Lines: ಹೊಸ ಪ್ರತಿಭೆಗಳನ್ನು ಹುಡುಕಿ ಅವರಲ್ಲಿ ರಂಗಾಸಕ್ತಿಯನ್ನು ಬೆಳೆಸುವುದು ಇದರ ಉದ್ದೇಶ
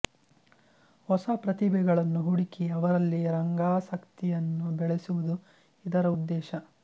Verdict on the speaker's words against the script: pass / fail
pass